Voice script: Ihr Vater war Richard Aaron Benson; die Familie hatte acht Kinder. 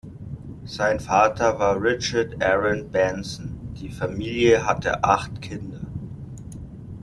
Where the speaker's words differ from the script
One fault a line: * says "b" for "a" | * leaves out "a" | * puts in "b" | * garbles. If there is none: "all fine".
* says "Sein" for "Ihr"